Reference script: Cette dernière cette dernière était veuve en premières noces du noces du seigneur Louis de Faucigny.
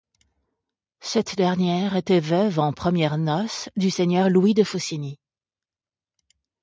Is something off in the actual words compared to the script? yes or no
yes